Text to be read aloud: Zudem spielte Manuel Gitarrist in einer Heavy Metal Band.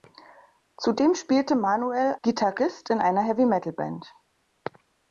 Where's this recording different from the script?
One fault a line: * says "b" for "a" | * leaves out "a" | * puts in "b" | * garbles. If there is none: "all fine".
all fine